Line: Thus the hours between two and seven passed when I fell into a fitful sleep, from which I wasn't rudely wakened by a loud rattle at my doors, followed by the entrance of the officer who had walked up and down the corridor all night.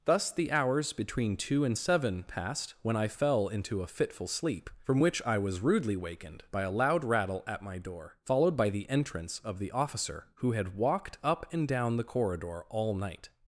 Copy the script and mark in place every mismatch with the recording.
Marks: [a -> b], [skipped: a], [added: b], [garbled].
Thus the hours between two and seven passed when I fell into a fitful sleep, from which I [wasn't -> was] rudely wakened by a loud rattle at my [doors, -> door] followed by the entrance of the officer who had walked up and down the corridor all night.